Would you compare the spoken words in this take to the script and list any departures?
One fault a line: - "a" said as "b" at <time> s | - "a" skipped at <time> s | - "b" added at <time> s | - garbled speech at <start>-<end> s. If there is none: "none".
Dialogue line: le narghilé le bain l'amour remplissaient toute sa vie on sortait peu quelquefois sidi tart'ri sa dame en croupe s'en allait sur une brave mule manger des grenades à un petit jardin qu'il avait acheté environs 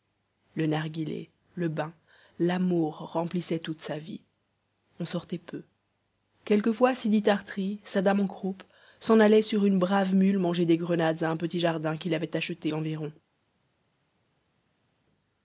none